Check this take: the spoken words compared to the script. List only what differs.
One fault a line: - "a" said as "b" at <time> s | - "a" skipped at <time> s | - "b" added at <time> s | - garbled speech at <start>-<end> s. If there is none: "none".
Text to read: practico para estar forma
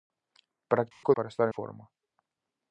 none